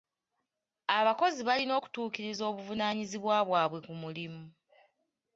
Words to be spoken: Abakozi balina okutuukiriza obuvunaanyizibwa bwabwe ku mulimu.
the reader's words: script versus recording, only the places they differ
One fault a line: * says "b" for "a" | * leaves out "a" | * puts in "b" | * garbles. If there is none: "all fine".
all fine